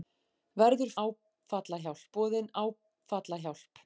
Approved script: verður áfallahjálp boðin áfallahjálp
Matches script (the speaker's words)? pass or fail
pass